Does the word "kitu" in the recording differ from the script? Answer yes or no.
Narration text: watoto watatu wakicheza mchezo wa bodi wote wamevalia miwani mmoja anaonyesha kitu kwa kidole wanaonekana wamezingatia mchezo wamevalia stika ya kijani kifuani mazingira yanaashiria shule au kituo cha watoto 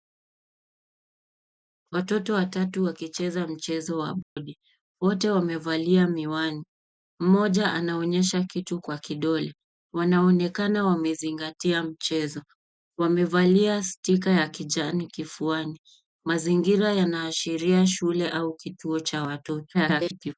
no